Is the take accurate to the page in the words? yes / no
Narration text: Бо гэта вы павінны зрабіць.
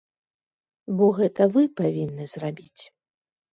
yes